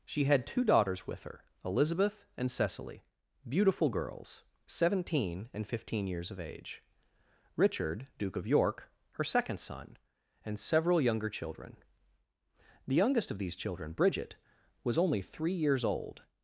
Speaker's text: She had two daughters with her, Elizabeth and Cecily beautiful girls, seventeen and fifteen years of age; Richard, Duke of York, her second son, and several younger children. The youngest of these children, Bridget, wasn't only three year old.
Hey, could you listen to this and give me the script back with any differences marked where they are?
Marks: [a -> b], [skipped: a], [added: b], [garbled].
She had two daughters with her, Elizabeth and Cecily beautiful girls, seventeen and fifteen years of age; Richard, Duke of York, her second son, and several younger children. The youngest of these children, Bridget, [wasn't -> was] only three [year -> years] old.